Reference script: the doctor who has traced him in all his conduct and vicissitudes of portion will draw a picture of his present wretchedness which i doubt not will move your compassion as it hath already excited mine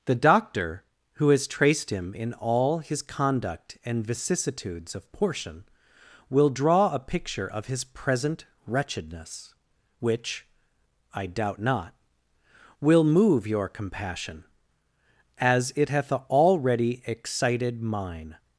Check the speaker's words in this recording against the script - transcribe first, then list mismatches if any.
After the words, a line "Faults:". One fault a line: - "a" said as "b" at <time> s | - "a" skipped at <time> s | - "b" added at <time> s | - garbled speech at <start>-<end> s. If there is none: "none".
the doctor who has traced him in all his conduct and vicissitudes of portion will draw a picture of his present wretchedness which i doubt not will move your compassion as it hath already excited mine
Faults:
none